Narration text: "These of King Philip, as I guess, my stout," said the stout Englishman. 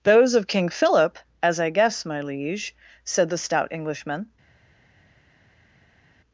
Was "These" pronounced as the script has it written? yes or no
no